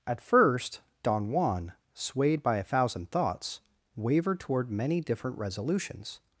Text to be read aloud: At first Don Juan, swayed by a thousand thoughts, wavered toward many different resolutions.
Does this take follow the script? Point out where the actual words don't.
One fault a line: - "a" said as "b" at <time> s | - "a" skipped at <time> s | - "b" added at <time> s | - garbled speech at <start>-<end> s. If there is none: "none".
none